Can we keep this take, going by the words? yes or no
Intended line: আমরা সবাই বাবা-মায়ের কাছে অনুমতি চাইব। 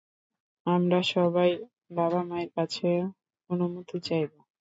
yes